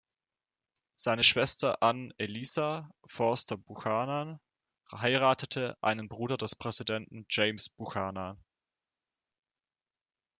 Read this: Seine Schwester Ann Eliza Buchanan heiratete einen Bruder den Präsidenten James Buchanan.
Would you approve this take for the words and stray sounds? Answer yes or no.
no